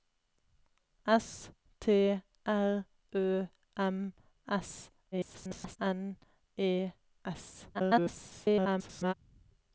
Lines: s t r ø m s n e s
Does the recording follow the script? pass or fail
fail